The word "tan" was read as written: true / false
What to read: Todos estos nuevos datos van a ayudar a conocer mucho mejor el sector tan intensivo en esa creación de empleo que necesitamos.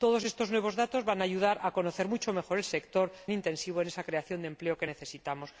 false